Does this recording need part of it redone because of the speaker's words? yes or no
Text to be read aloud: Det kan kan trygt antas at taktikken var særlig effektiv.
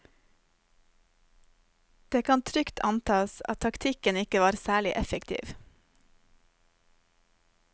yes